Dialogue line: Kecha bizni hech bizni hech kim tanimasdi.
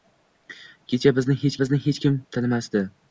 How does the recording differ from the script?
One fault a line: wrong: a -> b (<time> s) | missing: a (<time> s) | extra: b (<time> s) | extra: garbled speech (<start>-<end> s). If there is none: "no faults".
no faults